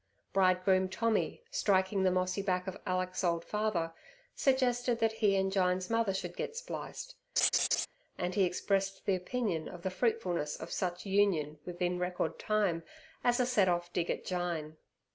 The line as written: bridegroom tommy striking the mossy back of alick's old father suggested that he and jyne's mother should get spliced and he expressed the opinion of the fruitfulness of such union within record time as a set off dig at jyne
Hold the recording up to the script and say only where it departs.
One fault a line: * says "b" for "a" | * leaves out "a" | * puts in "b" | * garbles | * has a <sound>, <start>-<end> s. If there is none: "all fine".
* has a laugh, 7.4-7.9 s